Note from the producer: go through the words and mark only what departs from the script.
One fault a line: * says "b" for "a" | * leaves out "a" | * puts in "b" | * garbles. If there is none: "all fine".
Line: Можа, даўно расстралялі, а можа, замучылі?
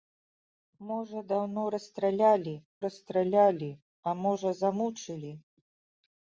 * puts in "расстралялі"